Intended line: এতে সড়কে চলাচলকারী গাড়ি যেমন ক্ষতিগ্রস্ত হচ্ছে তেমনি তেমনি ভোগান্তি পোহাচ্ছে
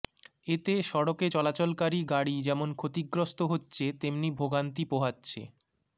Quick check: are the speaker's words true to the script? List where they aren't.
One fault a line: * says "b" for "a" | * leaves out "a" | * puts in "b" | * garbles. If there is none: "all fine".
* leaves out "তেমনি"